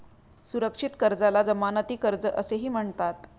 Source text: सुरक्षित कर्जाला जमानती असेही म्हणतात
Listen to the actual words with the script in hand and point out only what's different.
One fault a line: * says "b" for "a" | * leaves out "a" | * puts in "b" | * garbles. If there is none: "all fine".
* puts in "कर्ज"